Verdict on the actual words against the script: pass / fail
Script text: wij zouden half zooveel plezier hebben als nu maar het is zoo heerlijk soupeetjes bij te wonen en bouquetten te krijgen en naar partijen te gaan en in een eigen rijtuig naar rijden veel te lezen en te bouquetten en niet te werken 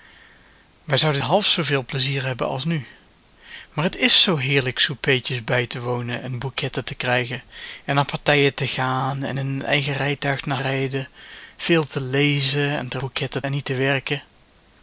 pass